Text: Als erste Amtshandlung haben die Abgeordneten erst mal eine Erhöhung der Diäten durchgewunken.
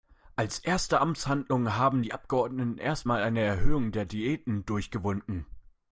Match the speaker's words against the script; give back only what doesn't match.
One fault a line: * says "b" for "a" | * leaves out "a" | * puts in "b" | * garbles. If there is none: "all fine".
all fine